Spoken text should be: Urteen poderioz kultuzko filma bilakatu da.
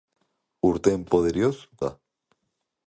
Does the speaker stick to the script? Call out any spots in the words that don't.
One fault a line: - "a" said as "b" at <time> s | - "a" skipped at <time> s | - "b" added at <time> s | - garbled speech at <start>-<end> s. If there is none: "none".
- "kultuzko filma bilakatu" skipped at 1.5 s